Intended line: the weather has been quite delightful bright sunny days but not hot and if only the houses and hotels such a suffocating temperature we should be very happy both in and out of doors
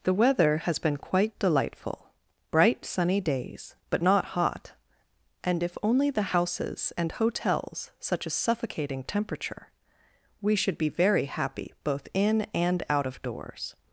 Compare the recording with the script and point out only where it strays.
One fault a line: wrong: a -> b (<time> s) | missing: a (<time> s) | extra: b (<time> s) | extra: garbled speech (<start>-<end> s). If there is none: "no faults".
no faults